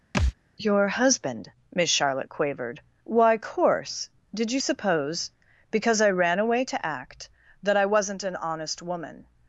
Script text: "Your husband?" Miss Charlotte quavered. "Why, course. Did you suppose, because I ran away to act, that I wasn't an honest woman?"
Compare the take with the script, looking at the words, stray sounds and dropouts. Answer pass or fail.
fail